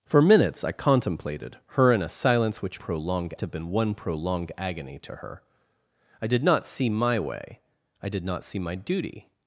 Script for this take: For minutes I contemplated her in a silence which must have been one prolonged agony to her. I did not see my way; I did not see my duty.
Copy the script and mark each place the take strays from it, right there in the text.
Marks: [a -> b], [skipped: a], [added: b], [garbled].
For minutes I contemplated her in a silence which [must -> prolonged] have been one prolonged agony to her. I did not see my way; I did not see my duty.